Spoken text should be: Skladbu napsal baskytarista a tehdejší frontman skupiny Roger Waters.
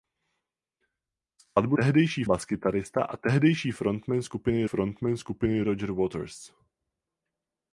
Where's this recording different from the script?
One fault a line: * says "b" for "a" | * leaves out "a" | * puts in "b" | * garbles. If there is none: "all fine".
* says "tehdejší" for "napsal"
* puts in "frontman skupiny"